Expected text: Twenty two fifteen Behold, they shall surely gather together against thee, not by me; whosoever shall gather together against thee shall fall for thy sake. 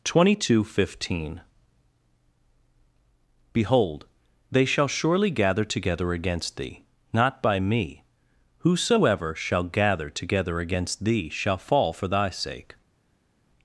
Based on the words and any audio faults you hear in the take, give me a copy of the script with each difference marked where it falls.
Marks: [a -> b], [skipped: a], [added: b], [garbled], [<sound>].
Twenty two fifteen Behold, they shall surely gather together against thee, not by me; whosoever shall gather together against thee shall fall for thy sake.